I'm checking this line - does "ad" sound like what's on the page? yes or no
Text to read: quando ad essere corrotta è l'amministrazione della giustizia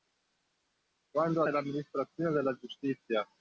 no